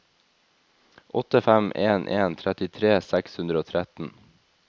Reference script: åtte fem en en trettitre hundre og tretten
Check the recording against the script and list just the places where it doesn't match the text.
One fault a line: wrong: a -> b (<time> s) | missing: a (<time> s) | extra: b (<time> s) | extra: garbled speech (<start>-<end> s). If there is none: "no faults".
extra: seks (3.1 s)